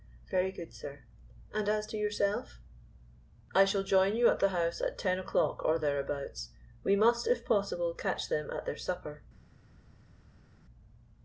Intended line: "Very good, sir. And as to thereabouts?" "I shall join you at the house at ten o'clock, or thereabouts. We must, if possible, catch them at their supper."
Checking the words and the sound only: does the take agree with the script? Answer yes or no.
no